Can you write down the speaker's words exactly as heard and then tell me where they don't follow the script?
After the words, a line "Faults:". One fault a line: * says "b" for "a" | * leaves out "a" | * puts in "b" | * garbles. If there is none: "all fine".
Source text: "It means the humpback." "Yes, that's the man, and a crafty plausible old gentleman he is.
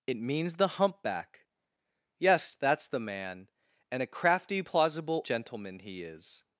"It means the humpback." "Yes, that's the man, and a crafty plausible gentleman he is.
Faults:
* leaves out "old"